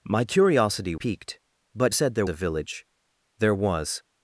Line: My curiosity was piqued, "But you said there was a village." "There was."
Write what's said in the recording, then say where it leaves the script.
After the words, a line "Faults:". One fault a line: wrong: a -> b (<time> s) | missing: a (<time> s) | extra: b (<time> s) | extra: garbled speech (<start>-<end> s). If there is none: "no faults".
My curiosity piqued, "But said there a village." "There was."
Faults:
missing: was (0.9 s)
missing: you (1.9 s)
missing: was (2.2 s)